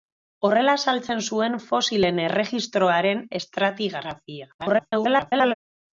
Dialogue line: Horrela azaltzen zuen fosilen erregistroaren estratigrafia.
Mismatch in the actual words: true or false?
true